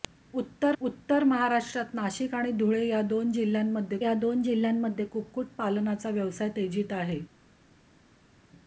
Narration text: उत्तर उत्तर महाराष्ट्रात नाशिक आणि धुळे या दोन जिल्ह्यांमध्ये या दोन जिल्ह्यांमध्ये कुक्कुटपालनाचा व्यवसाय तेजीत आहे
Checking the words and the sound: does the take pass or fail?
pass